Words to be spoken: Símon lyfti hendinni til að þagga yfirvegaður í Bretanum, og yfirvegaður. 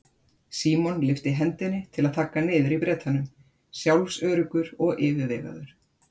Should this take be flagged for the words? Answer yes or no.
yes